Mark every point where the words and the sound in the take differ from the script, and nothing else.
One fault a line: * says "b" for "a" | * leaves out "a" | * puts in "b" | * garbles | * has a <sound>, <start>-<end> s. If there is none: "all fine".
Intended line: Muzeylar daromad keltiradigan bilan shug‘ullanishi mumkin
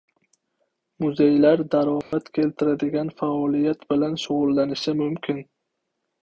* has a dropout, 2.0-2.1 s
* puts in "faoliyat"